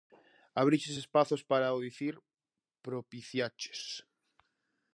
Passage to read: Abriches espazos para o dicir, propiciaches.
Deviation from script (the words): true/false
false